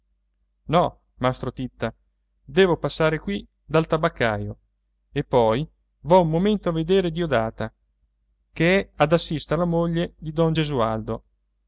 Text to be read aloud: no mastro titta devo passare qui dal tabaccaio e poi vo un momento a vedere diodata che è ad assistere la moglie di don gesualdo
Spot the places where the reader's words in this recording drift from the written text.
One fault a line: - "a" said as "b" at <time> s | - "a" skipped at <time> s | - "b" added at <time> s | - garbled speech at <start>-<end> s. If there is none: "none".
none